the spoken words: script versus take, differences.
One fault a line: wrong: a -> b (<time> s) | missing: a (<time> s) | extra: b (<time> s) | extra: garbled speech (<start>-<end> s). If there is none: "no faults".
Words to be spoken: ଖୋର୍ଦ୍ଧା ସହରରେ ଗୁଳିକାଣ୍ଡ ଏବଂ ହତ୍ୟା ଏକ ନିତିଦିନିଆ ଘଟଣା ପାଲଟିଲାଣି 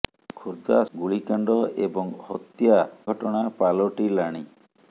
missing: ସହରରେ (0.8 s)
missing: ଏକ ନିତିଦିନିଆ (2.8 s)